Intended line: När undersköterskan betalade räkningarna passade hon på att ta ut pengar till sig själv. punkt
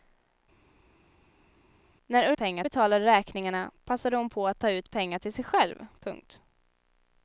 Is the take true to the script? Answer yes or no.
no